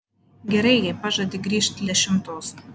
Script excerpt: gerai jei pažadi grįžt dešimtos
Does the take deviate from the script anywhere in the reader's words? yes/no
no